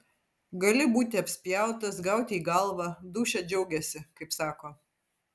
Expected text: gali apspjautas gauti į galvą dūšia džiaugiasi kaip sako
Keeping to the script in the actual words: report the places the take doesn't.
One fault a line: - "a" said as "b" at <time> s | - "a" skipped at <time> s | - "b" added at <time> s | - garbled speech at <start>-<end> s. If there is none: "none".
- "būti" added at 0.9 s